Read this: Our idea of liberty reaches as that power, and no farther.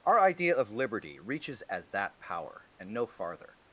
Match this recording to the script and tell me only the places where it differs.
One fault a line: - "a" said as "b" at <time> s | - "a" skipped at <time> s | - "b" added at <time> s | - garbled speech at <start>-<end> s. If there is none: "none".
none